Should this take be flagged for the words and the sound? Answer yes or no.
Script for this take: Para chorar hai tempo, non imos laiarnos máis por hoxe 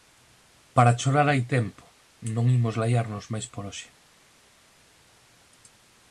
no